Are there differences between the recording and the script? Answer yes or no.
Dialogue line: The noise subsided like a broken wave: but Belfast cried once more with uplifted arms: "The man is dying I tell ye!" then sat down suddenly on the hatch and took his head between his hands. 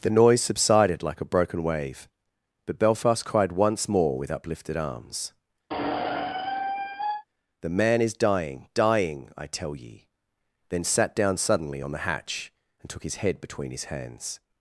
yes